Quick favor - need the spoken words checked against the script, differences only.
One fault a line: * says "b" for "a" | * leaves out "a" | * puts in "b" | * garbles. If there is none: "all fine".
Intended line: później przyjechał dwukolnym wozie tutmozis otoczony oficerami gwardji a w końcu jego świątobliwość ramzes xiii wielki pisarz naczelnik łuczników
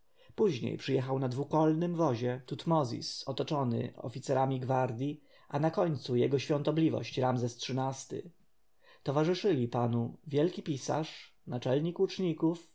* puts in "na"
* says "na" for "w"
* puts in "ty towarzyszyli panu"